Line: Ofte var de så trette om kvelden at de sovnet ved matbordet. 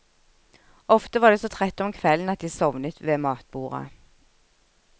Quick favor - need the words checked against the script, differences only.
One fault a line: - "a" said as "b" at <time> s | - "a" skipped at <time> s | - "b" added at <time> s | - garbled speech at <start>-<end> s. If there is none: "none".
none